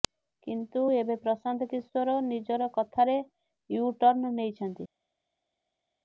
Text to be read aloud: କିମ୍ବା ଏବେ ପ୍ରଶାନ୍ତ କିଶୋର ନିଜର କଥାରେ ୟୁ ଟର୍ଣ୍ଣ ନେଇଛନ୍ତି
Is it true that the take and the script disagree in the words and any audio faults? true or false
true